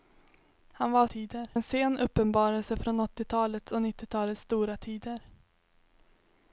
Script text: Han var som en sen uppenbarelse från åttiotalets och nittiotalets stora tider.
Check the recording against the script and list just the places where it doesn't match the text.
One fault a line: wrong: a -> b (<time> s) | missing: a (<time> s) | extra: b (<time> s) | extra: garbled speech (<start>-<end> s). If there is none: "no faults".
wrong: som -> tider (1.0 s)